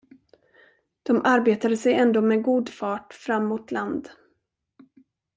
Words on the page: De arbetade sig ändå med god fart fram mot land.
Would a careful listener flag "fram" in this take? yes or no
no